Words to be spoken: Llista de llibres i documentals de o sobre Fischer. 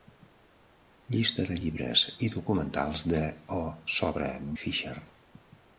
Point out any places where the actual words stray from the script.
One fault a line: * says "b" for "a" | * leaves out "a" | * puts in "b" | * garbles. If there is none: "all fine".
all fine